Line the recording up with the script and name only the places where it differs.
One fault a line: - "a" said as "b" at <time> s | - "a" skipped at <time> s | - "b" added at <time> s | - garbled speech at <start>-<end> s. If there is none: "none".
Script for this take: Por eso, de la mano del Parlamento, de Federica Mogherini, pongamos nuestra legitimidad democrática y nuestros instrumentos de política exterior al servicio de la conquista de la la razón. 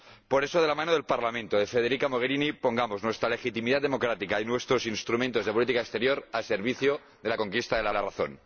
none